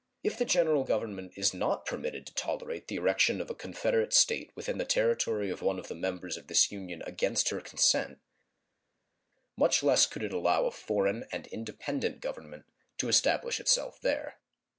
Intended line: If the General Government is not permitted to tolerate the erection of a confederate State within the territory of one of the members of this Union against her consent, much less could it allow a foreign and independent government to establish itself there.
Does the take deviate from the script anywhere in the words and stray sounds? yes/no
no